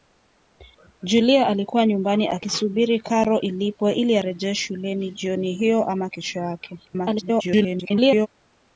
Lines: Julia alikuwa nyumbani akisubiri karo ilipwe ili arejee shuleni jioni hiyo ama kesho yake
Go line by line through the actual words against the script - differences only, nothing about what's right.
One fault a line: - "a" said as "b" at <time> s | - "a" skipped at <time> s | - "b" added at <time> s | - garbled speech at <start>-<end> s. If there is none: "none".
- garbled speech at 6.9-8.3 s